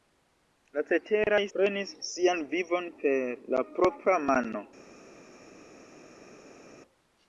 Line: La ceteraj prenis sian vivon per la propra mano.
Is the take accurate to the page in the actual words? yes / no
yes